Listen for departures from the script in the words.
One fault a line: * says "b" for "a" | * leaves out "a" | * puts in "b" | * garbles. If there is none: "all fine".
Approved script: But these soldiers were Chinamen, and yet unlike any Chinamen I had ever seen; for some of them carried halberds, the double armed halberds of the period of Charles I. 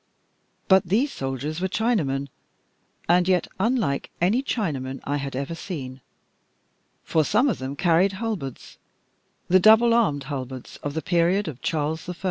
all fine